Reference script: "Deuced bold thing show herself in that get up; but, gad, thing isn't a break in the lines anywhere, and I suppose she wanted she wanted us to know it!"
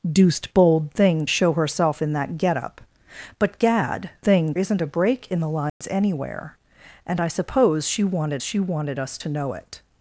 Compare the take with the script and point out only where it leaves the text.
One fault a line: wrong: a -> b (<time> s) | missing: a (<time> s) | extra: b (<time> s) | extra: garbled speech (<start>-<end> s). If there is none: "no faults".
no faults